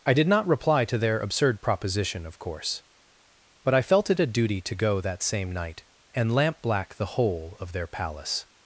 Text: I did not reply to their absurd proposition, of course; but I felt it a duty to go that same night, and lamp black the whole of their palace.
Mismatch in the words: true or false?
false